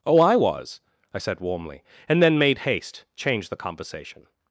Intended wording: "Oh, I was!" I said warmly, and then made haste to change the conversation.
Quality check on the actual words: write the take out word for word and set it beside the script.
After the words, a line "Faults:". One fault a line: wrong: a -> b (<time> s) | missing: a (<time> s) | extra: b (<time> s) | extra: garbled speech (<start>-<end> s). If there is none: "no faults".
"Oh, I was!" I said warmly, and then made haste change the conversation.
Faults:
missing: to (3.0 s)